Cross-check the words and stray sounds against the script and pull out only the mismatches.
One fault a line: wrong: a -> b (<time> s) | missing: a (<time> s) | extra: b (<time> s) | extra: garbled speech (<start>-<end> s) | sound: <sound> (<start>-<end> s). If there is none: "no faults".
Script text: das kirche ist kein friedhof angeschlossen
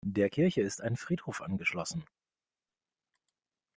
wrong: das -> der (0.0 s)
wrong: kein -> ein (0.8 s)